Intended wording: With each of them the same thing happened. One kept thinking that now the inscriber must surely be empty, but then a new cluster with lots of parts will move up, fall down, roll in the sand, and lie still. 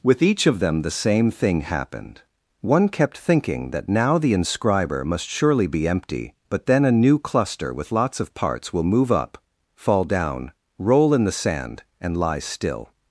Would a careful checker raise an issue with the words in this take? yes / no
no